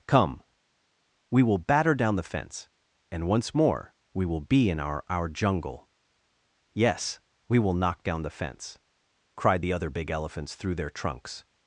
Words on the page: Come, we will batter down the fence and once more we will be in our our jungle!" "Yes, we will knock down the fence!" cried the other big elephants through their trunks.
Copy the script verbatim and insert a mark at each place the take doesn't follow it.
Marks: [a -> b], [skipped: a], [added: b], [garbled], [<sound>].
Come, we will batter down the fence and once more we will be in our our jungle!" "Yes, we will knock down the fence!" cried the other big elephants through their trunks.